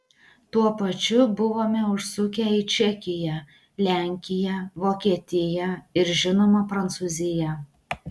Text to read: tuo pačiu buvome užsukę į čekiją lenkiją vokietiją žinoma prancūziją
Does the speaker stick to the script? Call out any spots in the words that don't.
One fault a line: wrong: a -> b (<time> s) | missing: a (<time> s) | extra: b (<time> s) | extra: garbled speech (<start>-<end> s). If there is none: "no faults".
extra: ir (6.0 s)